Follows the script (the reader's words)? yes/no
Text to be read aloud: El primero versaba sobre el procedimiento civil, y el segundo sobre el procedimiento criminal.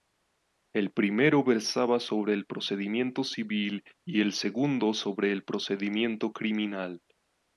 yes